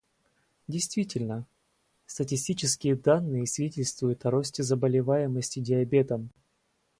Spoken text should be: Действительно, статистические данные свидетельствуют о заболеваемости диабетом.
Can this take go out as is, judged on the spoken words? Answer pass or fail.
fail